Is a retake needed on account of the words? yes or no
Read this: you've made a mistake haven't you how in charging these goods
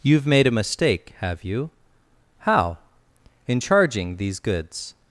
yes